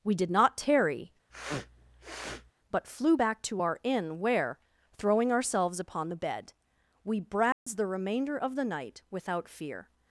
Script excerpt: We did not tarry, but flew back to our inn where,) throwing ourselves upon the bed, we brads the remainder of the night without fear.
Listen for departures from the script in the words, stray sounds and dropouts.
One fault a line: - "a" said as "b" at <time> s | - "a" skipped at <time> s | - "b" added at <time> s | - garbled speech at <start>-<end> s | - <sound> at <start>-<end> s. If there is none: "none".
- sniff at 1.3-2.5 s
- dropout at 7.5-7.7 s